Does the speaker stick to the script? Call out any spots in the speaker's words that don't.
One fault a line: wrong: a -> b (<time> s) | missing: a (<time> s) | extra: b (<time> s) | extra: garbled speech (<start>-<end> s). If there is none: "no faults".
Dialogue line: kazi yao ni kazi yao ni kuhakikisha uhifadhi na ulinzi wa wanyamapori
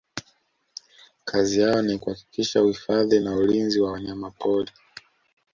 missing: kazi yao ni (2.0 s)